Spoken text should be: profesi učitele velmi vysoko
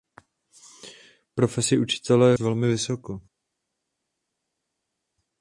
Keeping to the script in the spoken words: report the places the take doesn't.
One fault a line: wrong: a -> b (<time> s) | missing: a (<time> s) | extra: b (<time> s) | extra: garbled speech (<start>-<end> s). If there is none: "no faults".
no faults